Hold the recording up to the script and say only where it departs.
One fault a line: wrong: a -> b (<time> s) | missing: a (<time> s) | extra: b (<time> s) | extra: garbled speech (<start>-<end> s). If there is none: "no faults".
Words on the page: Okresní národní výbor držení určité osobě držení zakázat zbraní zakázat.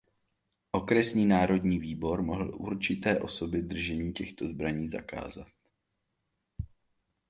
wrong: držení -> mohl (2.2 s)
wrong: zakázat -> těchto (4.1 s)